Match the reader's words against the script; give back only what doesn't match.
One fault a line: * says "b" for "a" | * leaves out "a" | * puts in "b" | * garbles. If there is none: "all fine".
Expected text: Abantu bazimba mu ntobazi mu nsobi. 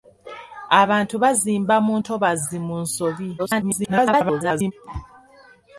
* garbles